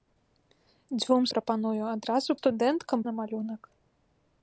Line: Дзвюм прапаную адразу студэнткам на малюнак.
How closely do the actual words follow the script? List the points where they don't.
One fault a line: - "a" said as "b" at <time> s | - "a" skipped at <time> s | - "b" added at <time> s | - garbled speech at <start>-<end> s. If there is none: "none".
none